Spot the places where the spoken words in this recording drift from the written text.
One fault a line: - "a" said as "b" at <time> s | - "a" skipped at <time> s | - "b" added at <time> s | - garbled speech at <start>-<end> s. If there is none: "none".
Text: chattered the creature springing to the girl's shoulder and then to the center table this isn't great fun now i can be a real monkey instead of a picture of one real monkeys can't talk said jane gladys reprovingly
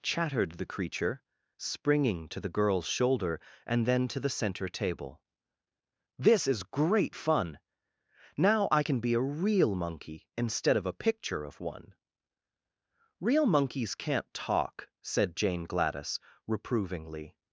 - "isn't" said as "is" at 6.5 s